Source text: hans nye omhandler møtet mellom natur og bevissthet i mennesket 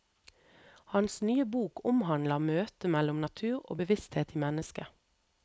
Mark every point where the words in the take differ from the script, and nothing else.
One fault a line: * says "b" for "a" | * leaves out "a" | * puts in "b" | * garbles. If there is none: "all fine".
* puts in "bok"